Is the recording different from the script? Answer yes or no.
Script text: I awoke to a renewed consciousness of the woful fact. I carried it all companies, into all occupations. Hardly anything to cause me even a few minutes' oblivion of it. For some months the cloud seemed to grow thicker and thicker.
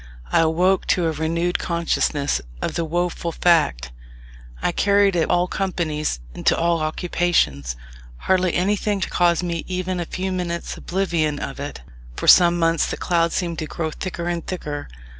no